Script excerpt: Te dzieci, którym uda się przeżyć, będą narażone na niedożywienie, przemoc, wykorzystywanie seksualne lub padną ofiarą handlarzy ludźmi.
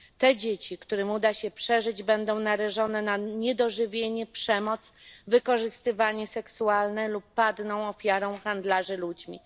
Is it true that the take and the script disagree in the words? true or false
false